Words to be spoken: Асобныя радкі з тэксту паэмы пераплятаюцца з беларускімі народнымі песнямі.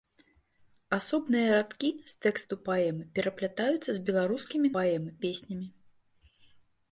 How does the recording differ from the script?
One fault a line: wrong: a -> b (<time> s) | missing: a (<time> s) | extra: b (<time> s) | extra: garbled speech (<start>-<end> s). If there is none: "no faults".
wrong: народнымі -> паэмы (4.8 s)